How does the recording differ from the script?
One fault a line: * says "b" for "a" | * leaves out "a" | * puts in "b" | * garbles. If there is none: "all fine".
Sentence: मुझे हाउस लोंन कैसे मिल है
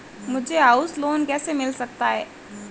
* puts in "सकता"